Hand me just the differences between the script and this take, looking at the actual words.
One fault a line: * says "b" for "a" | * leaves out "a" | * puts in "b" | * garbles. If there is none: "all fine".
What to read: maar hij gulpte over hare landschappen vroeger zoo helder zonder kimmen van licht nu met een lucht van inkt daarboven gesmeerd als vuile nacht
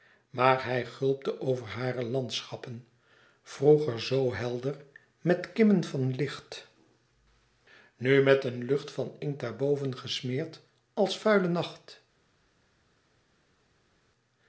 * says "met" for "zonder"